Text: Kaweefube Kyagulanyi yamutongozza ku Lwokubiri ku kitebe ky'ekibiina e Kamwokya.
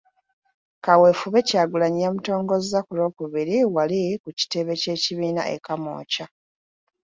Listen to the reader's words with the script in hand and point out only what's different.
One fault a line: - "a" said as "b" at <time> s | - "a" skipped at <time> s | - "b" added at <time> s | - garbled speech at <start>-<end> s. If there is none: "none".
- "wali" added at 3.8 s